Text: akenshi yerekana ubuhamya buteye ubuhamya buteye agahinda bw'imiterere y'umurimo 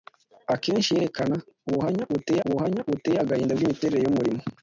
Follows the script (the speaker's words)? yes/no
yes